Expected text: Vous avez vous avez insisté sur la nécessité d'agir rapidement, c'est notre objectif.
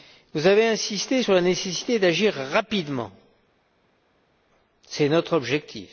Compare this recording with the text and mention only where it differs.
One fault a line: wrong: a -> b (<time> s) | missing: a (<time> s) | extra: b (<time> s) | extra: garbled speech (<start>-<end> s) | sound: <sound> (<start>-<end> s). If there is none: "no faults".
missing: vous avez (0.7 s)